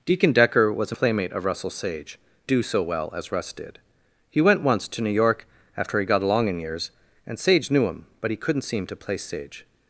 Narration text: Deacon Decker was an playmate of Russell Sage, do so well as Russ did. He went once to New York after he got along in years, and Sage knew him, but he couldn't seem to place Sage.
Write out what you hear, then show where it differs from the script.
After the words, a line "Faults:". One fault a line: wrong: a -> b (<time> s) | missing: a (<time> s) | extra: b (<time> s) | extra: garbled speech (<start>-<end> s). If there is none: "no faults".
Deacon Decker was an playmate of Russell Sage, do so well as Russ did. He went once to New York after he got along in years, and Sage knew him, but he couldn't seem to place Sage.
Faults:
no faults